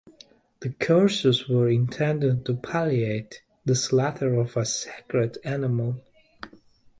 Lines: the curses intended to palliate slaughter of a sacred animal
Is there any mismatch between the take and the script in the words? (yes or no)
yes